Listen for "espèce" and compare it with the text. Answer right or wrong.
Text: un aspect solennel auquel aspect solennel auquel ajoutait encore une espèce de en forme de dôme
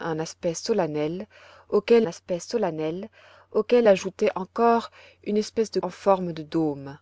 right